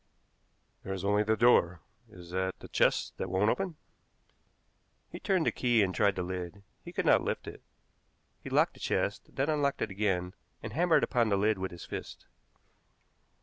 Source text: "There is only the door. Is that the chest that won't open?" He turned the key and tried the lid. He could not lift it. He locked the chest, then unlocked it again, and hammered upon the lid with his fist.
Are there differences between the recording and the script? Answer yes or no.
no